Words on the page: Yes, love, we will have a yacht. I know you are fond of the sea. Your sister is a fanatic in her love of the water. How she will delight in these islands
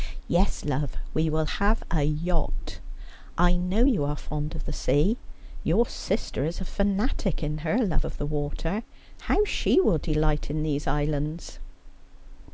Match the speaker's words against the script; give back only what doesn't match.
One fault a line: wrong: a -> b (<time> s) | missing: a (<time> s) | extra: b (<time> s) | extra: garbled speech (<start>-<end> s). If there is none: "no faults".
no faults